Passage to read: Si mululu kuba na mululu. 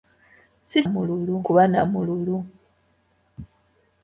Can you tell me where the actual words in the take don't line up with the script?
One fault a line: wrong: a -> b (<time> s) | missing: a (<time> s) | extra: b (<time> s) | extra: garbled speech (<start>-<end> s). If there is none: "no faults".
no faults